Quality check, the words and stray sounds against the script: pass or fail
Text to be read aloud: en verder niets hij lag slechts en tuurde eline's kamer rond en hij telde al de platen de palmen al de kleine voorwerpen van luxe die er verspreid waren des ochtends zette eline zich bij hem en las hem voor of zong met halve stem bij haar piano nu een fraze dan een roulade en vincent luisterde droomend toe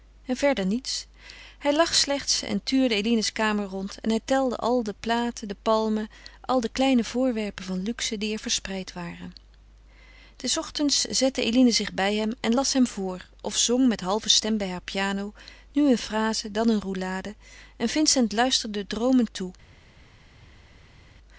pass